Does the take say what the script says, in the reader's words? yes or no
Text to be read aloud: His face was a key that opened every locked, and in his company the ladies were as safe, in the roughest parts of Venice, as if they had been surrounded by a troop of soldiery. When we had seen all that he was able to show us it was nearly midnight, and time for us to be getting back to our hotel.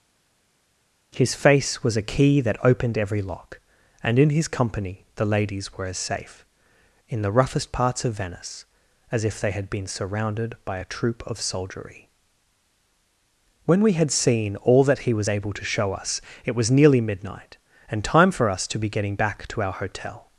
no